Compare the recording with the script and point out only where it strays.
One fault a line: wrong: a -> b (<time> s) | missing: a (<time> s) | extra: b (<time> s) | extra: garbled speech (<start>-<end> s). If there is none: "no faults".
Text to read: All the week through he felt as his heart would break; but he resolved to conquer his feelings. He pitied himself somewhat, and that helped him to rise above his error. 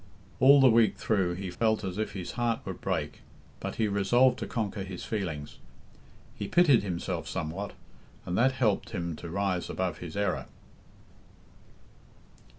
extra: if (2.0 s)